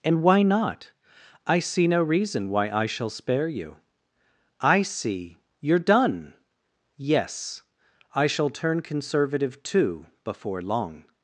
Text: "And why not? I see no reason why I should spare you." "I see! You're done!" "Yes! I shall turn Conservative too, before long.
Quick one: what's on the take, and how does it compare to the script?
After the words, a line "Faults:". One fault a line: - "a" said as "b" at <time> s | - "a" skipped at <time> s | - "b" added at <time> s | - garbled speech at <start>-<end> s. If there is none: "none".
"And why not? I see no reason why I shall spare you." "I see! You're done!" "Yes! I shall turn Conservative too, before long.
Faults:
- "should" said as "shall" at 2.9 s